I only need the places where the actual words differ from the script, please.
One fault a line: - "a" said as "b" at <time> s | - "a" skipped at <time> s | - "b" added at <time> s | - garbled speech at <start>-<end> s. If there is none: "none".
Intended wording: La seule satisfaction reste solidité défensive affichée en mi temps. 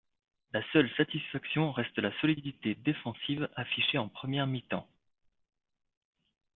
- "la" added at 2.0 s
- "première" added at 4.1 s